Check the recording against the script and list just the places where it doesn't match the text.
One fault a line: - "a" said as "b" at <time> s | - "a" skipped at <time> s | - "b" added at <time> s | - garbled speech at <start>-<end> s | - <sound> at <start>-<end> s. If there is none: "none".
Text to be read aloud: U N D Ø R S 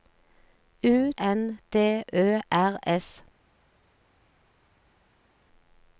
none